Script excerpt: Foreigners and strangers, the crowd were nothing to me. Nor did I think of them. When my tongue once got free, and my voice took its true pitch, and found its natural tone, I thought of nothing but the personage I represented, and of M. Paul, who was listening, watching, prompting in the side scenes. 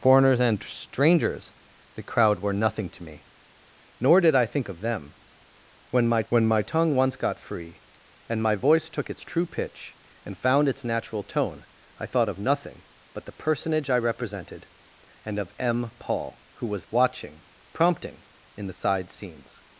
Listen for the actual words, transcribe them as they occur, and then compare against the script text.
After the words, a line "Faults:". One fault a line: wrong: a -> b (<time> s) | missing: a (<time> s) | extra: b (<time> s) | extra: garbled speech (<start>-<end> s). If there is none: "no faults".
Foreigners and strangers, the crowd were nothing to me. Nor did I think of them. When my when my tongue once got free, and my voice took its true pitch, and found its natural tone, I thought of nothing but the personage I represented, and of M. Paul, who was watching, prompting in the side scenes.
Faults:
extra: when my (6.3 s)
missing: listening (16.9 s)